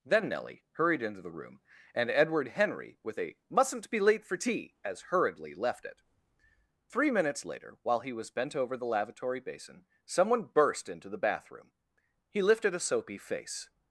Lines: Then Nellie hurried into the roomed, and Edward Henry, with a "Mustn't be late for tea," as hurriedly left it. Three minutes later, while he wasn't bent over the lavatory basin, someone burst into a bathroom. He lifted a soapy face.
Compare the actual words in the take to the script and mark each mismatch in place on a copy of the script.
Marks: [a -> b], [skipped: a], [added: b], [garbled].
Then Nellie hurried into the [roomed, -> room] and Edward Henry, with a "Mustn't be late for tea," as hurriedly left it. Three minutes later, while he [wasn't -> was] bent over the lavatory basin, someone burst into [a -> the] bathroom. He lifted a soapy face.